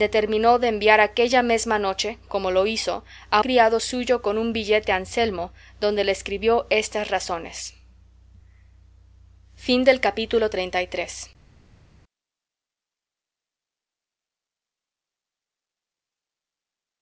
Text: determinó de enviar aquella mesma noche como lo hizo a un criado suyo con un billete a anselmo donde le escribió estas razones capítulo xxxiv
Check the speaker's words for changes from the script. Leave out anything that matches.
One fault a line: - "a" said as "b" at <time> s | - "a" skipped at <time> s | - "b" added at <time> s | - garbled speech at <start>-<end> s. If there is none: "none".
- "un" skipped at 3.4 s